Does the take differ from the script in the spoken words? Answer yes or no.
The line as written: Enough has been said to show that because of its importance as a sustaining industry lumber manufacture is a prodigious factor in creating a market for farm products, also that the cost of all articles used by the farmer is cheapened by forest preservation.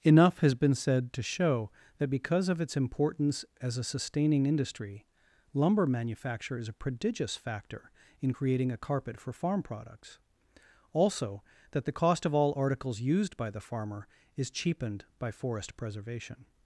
yes